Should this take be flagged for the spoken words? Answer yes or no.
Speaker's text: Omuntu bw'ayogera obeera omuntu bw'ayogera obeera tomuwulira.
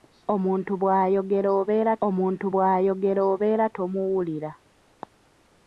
no